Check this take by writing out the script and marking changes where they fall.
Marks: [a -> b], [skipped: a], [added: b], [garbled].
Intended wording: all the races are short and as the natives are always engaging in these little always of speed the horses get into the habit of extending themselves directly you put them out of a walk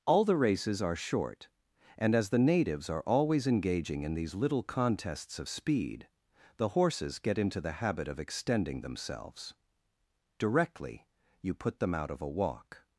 all the races are short and as the natives are always engaging in these little [always -> contests] of speed the horses get into the habit of extending themselves directly you put them out of a walk